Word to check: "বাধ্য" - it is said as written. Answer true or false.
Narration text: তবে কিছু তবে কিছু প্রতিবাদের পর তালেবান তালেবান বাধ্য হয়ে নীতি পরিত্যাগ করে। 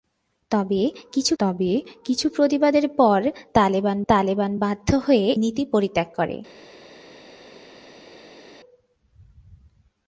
true